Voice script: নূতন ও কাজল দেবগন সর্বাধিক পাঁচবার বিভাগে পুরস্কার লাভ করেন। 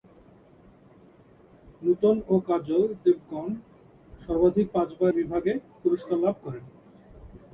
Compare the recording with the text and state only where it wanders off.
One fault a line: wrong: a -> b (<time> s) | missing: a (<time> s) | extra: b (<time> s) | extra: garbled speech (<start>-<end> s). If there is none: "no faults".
no faults